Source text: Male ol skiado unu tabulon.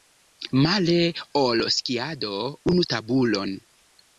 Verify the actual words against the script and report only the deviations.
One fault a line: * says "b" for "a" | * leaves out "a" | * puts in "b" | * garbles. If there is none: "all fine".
all fine